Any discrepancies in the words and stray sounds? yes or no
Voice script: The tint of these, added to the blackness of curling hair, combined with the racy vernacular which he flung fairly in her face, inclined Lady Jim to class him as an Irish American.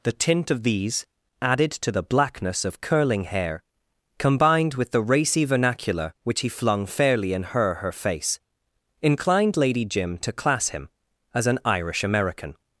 yes